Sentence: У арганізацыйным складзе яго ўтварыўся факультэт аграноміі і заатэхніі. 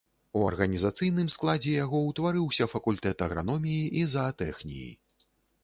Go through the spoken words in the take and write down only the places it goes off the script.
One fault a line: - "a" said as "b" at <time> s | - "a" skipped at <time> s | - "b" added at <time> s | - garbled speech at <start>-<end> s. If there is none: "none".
none